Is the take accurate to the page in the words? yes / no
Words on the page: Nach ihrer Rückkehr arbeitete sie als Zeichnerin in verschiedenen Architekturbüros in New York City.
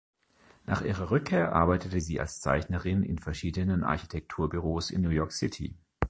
yes